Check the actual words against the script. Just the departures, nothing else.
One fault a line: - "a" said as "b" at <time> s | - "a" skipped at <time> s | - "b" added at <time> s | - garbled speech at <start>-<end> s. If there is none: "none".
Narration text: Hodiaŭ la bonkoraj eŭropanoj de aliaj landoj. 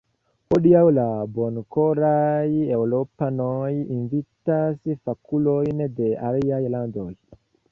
- "invitas fakulojn" added at 4.0 s